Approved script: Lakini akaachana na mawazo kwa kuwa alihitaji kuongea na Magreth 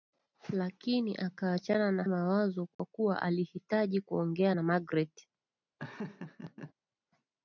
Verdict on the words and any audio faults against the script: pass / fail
fail